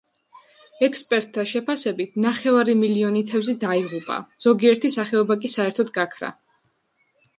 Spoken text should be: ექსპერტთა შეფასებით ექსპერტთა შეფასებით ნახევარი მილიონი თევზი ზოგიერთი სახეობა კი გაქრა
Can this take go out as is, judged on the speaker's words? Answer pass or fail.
fail